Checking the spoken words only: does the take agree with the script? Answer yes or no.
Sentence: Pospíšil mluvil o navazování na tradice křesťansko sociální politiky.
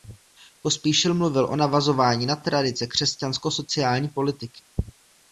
yes